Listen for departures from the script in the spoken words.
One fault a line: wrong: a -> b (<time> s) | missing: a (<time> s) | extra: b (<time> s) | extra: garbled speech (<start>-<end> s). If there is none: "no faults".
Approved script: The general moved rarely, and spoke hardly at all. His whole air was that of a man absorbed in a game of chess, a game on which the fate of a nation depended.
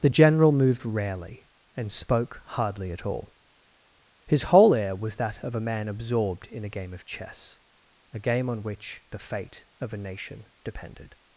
no faults